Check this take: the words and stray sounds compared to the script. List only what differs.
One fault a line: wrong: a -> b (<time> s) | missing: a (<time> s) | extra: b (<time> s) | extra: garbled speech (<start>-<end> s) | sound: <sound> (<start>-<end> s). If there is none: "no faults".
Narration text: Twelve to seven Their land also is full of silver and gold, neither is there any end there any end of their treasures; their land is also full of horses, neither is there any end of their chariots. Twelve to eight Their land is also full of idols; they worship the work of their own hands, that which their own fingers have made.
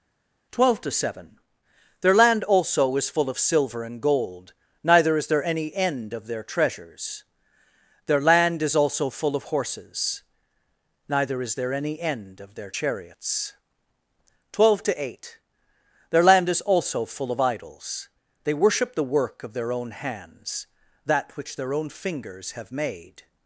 missing: there any end (6.1 s)